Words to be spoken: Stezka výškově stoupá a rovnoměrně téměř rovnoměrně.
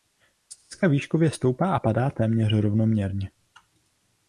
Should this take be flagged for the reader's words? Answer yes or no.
yes